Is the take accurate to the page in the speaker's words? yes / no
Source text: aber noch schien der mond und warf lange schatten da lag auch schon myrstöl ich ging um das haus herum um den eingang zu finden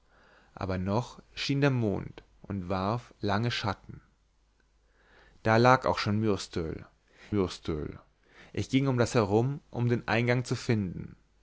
no